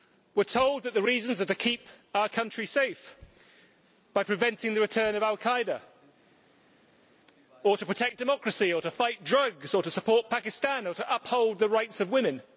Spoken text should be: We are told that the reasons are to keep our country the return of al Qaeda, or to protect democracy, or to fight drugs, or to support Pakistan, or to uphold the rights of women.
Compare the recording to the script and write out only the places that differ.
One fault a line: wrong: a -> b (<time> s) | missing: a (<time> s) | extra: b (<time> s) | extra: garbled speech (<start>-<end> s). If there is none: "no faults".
extra: safe by preventing (2.6 s)